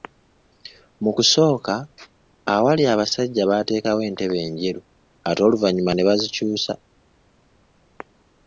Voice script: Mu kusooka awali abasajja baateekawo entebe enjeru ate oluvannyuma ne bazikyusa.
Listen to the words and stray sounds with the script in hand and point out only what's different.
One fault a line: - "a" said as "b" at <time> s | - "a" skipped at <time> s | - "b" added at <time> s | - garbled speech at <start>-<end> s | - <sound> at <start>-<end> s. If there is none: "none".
none